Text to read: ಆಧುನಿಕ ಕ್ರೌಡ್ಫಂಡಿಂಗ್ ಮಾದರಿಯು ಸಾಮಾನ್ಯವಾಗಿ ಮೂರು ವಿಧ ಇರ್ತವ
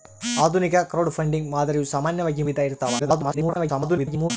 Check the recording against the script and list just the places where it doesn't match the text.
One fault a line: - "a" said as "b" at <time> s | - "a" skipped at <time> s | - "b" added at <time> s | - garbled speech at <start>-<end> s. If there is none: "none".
- "ಮೂರು" skipped at 2.4 s
- garbled speech at 3.0-4.3 s